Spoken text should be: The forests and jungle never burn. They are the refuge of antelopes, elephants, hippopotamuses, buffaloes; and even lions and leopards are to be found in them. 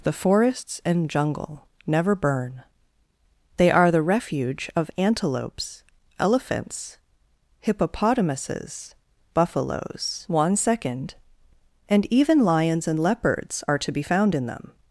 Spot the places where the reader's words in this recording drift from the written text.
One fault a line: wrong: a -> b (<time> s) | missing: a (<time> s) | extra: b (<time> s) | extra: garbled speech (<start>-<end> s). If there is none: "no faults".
extra: one second (10.3 s)